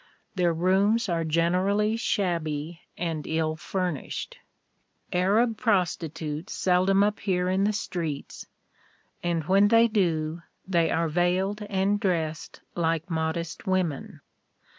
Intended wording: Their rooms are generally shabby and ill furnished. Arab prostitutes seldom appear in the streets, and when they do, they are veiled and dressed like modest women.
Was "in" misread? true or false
false